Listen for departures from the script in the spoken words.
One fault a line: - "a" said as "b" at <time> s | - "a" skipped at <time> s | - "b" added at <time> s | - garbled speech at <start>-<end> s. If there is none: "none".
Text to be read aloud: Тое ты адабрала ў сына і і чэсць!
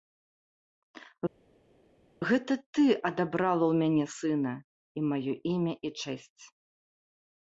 - "Тое" said as "Гэта" at 2.3 s
- "мяне" added at 3.8 s
- "маё імя" added at 5.1 s